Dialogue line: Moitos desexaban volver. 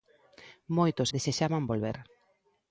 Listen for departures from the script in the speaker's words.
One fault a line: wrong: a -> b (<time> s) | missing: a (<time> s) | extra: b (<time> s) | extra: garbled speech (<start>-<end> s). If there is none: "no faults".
no faults